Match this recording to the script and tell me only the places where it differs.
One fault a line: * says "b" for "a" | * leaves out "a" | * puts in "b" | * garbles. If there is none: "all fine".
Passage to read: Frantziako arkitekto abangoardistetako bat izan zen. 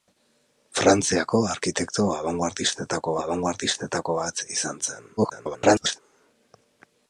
* puts in "abangoardistetako"
* garbles